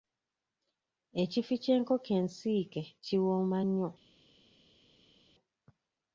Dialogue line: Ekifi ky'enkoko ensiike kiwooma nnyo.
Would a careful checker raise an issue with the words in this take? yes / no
no